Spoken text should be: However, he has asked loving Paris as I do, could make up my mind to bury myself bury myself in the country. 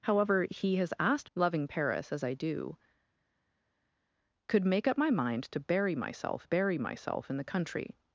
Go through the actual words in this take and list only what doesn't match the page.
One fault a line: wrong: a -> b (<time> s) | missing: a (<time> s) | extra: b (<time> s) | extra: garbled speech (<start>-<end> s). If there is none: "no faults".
no faults